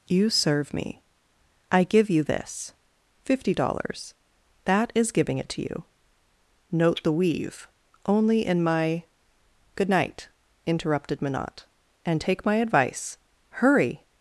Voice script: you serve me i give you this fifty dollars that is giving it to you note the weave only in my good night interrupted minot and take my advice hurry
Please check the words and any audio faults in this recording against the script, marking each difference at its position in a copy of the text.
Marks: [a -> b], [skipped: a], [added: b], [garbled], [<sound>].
you serve me i give you this fifty dollars that is giving it to you note the weave only in my good night interrupted minot and take my advice hurry